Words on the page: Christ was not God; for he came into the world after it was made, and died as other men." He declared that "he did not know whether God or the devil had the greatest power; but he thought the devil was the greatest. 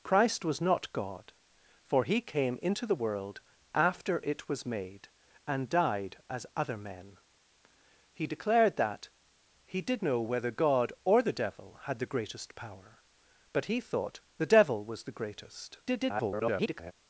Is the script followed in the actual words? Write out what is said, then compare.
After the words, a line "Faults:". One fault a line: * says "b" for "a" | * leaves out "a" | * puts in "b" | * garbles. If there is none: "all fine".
Christ was not God; for he came into the world after it was made, and died as other men." He declared that "he did know whether God or the devil had the greatest power; but he thought the devil was the greatest. [garbled]
Faults:
* leaves out "not"
* garbles